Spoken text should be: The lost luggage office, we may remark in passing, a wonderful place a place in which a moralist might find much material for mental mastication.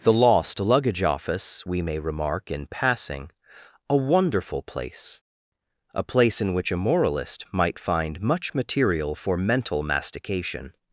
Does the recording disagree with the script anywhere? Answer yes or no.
no